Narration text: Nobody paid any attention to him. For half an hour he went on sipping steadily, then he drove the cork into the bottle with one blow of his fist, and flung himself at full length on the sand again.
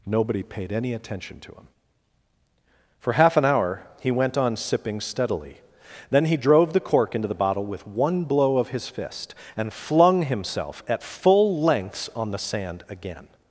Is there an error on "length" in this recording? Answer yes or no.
yes